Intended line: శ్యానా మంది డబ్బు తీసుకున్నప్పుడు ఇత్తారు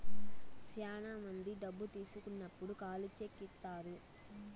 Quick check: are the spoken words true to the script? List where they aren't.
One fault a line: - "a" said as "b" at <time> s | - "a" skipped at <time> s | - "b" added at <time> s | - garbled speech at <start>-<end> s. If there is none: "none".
- "ఖాళీ చెక్" added at 2.8 s